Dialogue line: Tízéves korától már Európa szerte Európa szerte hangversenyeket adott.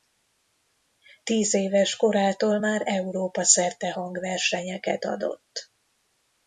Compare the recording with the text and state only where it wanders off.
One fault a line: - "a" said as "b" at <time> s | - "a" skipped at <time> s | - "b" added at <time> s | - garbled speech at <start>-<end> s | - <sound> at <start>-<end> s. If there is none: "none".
- "Európa szerte" skipped at 3.9 s